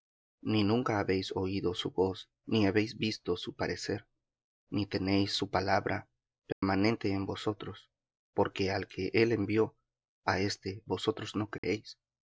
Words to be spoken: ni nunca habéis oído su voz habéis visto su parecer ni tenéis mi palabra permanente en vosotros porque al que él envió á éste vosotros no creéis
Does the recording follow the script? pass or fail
fail